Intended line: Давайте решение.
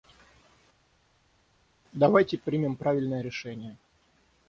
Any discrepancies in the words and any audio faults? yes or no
yes